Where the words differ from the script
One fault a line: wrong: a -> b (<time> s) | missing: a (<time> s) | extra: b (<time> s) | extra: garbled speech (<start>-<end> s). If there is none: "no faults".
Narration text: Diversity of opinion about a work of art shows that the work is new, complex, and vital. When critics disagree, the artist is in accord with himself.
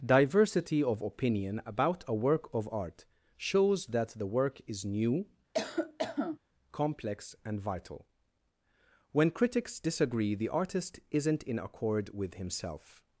wrong: is -> isn't (11.1 s)